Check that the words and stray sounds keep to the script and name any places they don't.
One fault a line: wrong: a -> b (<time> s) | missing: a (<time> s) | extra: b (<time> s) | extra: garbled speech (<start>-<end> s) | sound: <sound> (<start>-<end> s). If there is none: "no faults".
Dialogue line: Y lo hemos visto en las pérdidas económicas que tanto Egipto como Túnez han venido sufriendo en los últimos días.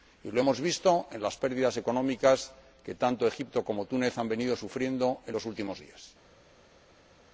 no faults